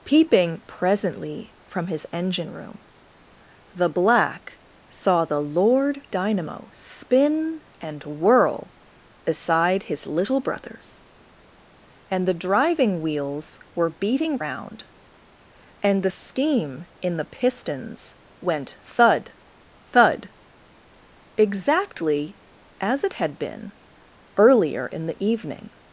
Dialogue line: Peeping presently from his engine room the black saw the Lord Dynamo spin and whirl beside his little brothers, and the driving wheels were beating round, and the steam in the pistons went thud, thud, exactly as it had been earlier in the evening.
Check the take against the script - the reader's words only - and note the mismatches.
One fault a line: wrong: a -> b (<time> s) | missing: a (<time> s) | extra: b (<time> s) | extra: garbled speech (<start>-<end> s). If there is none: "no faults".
no faults